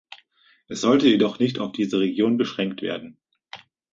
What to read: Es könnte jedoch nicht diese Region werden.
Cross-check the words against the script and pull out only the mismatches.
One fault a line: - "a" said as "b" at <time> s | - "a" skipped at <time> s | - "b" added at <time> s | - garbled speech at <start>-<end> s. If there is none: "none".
- "könnte" said as "sollte" at 0.8 s
- "auf" added at 1.6 s
- "beschränkt" added at 2.4 s